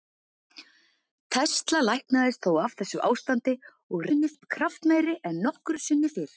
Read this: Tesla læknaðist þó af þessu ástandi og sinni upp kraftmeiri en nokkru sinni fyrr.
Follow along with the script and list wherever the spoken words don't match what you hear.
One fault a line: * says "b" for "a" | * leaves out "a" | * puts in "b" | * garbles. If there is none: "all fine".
all fine